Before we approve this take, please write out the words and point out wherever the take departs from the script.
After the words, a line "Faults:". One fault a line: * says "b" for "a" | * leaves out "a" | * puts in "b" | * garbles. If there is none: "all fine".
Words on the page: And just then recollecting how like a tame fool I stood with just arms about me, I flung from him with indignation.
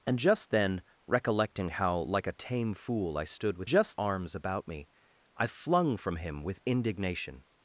And just then recollecting how like a tame fool I stood with just arms about me, I flung from him with indignation.
Faults:
all fine